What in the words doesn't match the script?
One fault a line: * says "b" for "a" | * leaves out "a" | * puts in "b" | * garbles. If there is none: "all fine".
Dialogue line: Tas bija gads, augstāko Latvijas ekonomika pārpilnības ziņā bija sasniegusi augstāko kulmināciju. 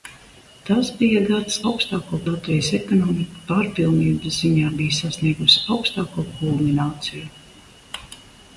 all fine